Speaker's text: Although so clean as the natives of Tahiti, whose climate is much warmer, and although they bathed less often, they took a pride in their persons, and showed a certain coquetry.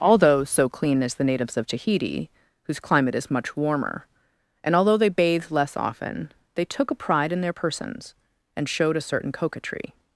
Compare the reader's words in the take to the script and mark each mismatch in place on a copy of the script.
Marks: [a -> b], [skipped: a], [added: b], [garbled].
Although so clean as the natives of Tahiti, whose climate is much warmer, and although they bathed less often, they took a pride in their persons, and showed a certain coquetry.